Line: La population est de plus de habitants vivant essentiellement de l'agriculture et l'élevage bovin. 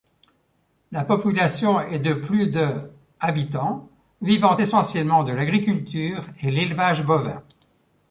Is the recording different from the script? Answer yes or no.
no